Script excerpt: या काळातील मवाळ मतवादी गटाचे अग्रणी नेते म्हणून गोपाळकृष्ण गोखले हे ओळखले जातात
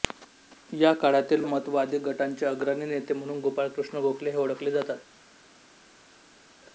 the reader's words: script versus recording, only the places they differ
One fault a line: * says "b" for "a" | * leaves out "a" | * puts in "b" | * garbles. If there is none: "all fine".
* leaves out "मवाळ"